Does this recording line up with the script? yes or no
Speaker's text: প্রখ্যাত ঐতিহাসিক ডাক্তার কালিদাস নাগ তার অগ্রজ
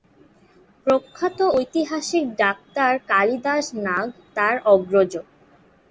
yes